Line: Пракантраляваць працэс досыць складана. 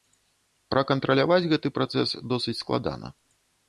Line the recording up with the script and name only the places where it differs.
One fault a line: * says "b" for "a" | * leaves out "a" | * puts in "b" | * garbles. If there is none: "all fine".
* puts in "гэты"